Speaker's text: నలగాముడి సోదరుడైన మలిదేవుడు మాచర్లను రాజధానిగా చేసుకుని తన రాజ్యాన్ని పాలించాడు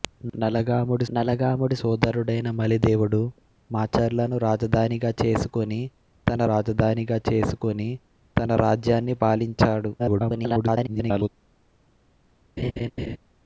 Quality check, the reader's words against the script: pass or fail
fail